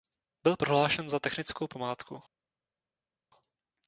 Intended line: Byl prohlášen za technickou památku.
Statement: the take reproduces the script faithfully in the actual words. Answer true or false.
true